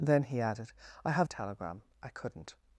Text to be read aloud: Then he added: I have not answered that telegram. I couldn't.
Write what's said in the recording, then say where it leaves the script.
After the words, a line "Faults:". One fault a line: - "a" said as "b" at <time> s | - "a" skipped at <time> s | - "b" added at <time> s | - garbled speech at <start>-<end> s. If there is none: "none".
Then he added: I have telegram. I couldn't.
Faults:
- "not answered that" skipped at 1.3 s